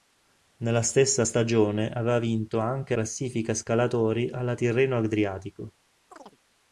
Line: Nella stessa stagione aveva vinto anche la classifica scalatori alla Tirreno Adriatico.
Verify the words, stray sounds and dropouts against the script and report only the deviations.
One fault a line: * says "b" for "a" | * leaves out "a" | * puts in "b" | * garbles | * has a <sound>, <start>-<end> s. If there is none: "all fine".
* leaves out "la"
* has a chirp, 6.1-6.4 s